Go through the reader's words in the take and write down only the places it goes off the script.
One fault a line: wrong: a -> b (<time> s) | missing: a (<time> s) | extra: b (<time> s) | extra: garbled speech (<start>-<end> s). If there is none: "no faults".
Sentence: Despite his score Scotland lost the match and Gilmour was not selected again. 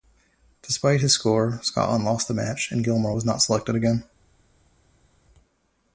no faults